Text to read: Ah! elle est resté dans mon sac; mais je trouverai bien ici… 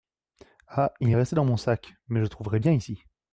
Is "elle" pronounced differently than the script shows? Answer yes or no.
yes